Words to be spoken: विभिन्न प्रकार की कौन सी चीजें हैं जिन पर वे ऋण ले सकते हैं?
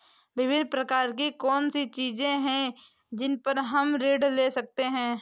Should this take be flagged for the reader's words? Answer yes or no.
yes